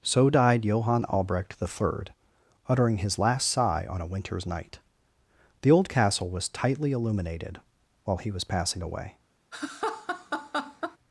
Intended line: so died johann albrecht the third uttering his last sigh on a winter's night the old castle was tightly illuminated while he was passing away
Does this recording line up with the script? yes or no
yes